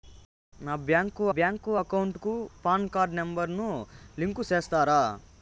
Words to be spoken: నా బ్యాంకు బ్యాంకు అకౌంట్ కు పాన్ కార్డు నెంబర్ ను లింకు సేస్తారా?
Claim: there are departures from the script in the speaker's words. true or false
false